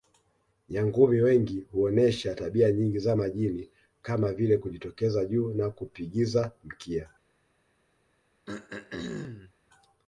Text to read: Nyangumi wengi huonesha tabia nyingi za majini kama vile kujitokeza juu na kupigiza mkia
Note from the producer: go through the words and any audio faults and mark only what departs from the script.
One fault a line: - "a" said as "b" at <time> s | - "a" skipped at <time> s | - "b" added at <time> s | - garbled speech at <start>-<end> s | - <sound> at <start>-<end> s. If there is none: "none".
- throat clearing at 8.5-9.5 s